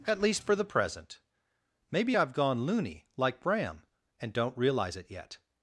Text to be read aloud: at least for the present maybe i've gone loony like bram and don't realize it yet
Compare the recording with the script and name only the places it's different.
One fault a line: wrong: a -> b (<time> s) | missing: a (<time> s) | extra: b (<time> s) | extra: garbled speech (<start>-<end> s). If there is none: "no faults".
no faults